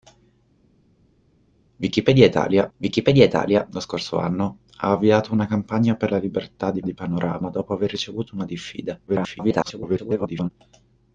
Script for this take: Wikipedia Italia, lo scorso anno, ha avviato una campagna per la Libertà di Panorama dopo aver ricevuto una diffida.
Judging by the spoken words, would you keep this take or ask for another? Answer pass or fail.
fail